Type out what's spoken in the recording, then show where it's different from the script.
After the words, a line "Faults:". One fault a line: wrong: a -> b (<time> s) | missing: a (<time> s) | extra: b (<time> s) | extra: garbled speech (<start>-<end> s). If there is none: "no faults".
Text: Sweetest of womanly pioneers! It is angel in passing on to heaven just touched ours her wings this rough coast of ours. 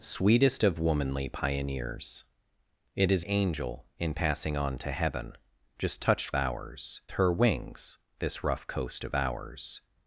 Sweetest of womanly pioneers! It is angel in passing on to heaven just touched ours her wings this rough coast of ours.
Faults:
no faults